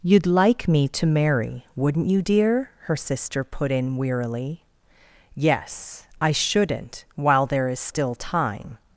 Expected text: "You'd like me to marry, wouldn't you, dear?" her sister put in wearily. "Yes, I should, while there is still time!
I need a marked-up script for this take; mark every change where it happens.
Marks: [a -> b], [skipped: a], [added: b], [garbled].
"You'd like me to marry, wouldn't you, dear?" her sister put in wearily. "Yes, I [should, -> shouldn't] while there is still time!